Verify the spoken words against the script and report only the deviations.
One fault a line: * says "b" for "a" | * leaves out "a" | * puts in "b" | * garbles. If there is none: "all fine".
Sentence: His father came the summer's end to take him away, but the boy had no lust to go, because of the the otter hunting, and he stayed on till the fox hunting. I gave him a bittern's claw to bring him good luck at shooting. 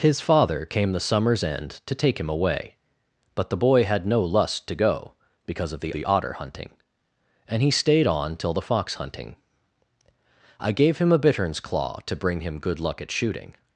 all fine